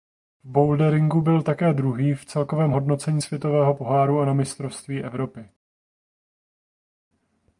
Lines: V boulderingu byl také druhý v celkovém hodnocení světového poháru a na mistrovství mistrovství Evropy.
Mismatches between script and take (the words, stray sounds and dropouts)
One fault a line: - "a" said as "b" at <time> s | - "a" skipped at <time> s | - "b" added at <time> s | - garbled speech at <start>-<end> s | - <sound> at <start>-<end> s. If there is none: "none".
- "mistrovství" skipped at 5.0 s